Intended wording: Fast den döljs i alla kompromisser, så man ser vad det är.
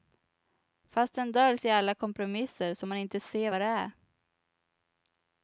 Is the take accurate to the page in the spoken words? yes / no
no